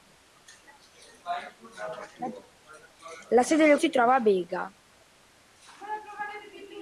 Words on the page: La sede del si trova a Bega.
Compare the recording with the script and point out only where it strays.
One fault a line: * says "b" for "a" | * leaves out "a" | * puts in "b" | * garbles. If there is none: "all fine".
all fine